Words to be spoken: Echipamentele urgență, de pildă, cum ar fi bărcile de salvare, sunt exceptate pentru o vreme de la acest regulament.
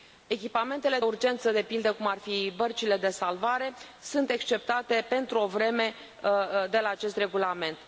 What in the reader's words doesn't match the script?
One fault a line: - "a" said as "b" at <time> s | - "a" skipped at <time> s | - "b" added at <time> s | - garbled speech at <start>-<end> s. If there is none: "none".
none